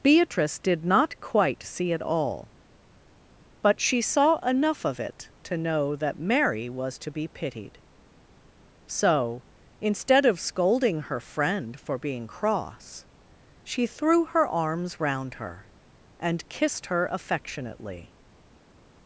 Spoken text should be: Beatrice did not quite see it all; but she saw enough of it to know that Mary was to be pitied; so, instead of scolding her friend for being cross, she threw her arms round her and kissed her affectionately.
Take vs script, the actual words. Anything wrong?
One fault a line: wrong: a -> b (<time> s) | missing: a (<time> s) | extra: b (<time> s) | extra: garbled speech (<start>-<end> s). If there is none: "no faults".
no faults